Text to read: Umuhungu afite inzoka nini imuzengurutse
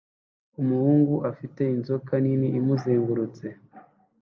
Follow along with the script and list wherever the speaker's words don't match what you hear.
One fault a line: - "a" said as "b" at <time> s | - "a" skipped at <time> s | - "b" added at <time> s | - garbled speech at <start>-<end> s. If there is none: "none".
none